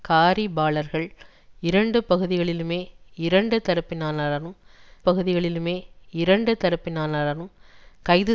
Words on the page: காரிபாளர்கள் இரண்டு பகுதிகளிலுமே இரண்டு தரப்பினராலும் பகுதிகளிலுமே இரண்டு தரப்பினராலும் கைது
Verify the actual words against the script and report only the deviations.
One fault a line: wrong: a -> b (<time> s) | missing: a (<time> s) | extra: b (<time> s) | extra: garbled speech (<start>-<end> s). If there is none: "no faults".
no faults